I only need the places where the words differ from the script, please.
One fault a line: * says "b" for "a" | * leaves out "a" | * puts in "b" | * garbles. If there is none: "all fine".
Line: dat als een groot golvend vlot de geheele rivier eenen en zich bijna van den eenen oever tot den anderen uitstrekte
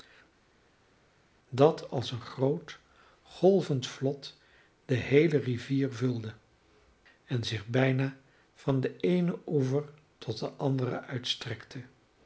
* says "vulde" for "eenen"